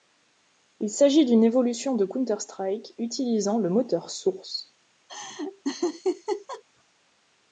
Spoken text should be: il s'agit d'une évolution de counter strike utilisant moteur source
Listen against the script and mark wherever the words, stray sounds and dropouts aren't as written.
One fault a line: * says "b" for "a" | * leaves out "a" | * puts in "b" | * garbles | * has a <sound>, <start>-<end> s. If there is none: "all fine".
* puts in "le"
* has a laugh, 5.1-6.6 s